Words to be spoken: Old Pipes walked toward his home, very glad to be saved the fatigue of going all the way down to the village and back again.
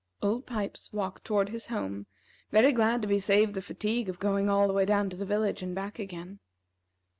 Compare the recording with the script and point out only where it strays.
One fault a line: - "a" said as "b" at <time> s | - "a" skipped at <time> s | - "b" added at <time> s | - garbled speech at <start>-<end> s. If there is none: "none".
none